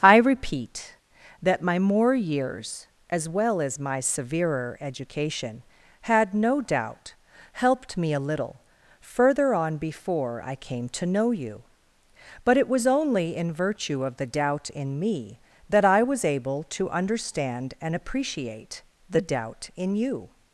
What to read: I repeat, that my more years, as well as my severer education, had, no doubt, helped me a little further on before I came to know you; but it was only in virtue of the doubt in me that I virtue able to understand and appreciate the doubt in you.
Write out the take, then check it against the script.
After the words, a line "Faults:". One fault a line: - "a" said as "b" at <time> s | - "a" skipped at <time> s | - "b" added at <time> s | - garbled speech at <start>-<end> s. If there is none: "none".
I repeat, that my more years, as well as my severer education, had, no doubt, helped me a little further on before I came to know you; but it was only in virtue of the doubt in me that I was able to understand and appreciate the doubt in you.
Faults:
- "virtue" said as "was" at 16.0 s